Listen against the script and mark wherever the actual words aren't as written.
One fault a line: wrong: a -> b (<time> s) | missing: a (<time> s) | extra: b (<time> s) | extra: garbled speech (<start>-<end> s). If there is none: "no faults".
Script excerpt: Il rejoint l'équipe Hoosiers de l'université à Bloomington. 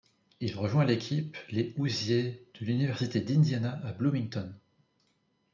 extra: les (1.5 s)
extra: d'Indiana (3.2 s)